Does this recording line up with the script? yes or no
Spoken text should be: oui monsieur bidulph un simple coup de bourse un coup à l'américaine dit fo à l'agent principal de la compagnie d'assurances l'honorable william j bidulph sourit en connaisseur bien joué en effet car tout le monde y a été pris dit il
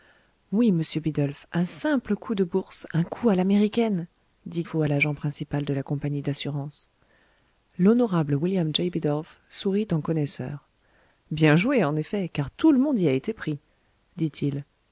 yes